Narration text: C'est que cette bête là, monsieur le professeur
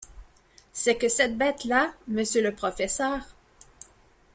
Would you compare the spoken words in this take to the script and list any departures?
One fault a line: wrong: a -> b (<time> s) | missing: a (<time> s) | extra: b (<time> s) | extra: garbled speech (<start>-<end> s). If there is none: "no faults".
no faults